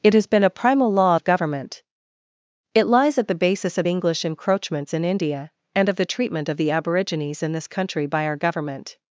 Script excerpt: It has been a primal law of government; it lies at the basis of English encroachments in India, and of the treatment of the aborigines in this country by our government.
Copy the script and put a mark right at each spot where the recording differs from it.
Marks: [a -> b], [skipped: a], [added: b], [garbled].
It has been a primal law of government; it lies at the basis of English encroachments in India, and of the treatment of the aborigines in this country by our government.